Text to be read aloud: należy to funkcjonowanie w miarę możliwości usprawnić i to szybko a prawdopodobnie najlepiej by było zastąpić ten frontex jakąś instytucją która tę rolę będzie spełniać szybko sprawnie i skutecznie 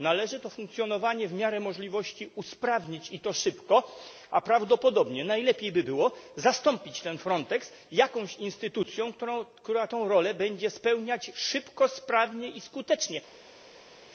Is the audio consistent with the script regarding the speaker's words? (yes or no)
yes